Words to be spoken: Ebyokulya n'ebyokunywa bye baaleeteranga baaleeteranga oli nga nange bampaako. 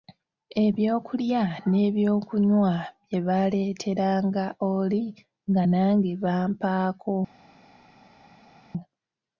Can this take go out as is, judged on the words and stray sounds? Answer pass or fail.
fail